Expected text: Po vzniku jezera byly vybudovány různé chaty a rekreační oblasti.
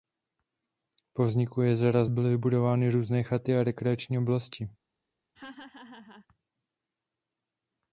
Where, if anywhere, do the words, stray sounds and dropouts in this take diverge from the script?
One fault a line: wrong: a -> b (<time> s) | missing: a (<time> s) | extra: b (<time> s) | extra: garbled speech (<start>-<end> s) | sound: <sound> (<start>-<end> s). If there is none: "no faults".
sound: laugh (5.3-6.3 s)